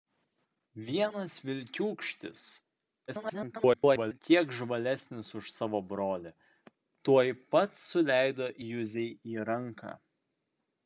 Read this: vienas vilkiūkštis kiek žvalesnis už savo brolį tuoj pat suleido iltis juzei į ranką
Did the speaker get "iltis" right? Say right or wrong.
wrong